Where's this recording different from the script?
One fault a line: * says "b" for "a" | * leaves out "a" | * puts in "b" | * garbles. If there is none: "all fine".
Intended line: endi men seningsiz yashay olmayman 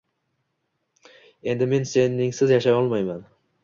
all fine